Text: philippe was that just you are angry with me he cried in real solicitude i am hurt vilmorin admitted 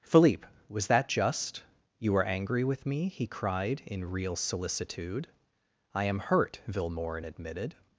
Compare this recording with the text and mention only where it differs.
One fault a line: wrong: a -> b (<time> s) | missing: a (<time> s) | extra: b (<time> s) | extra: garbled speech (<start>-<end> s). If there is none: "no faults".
no faults